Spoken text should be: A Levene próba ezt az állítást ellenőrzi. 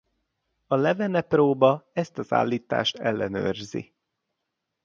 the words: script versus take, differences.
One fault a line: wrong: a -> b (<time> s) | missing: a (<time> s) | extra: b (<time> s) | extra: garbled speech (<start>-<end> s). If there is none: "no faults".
no faults